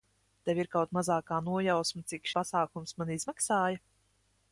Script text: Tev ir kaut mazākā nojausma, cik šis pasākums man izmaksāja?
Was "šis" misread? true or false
true